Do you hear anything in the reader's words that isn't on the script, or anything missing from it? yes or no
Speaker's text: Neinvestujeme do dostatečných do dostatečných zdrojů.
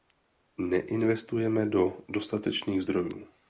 yes